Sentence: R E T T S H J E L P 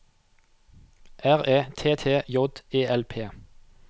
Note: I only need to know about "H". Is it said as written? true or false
false